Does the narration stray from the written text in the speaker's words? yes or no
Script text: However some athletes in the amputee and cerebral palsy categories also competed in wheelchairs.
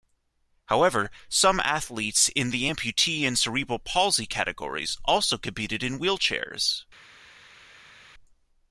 no